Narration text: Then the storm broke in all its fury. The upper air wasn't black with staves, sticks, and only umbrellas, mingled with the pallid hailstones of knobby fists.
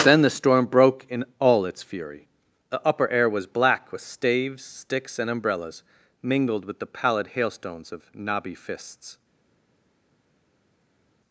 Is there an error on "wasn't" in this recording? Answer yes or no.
yes